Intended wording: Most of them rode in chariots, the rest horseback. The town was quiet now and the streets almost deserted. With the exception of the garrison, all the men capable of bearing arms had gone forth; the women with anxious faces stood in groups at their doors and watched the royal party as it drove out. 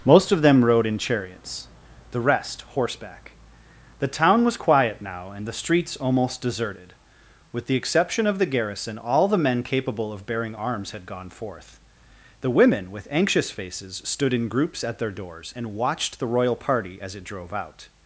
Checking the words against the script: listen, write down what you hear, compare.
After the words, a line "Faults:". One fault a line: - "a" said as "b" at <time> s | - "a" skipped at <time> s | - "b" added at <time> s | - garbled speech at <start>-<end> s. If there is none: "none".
Most of them rode in chariots, the rest horseback. The town was quiet now and the streets almost deserted. With the exception of the garrison, all the men capable of bearing arms had gone forth; the women with anxious faces stood in groups at their doors and watched the royal party as it drove out.
Faults:
none